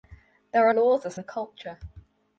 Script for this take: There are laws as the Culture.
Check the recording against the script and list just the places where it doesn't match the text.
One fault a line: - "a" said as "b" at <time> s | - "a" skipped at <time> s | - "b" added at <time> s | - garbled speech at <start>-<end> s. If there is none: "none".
none